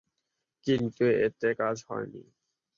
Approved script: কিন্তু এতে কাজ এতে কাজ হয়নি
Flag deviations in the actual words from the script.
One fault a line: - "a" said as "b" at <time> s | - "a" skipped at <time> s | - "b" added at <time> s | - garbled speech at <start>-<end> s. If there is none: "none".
- "এতে কাজ" skipped at 1.8 s